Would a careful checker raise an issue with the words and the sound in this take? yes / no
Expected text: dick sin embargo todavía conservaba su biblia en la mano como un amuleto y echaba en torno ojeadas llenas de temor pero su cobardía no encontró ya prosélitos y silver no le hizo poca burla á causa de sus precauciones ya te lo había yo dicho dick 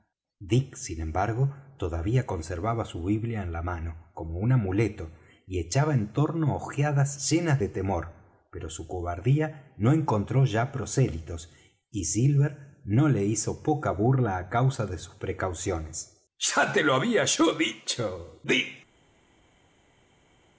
no